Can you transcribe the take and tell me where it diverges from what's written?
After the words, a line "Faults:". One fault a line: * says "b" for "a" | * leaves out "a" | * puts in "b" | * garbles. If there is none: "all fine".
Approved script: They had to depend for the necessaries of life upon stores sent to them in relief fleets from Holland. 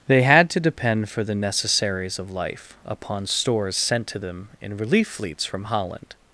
They had to depend for the necessaries of life upon stores sent to them in relief fleets from Holland.
Faults:
all fine